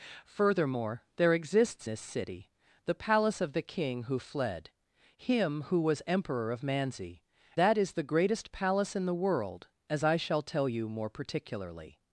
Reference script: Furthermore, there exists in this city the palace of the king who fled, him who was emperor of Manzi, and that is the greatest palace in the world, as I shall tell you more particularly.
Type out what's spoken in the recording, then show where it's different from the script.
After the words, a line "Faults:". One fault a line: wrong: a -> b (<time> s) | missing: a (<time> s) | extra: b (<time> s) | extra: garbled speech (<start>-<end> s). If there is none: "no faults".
Furthermore, there exists this city the palace of the king who fled, him who was emperor of Manzi, that is the greatest palace in the world, as I shall tell you more particularly.
Faults:
missing: in (1.9 s)
missing: and (7.2 s)